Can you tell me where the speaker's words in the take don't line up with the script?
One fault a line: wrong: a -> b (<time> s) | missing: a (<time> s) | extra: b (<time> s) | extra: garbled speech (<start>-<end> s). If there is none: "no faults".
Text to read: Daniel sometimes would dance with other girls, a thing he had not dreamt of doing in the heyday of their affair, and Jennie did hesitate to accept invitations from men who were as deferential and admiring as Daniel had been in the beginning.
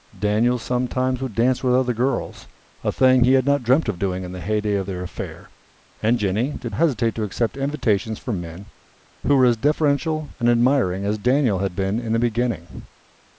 no faults